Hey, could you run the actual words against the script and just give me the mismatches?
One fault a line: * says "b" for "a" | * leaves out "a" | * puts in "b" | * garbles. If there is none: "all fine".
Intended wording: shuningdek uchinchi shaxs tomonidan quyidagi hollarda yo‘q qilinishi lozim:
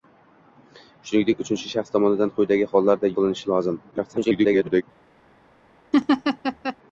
* leaves out "yo‘q"
* garbles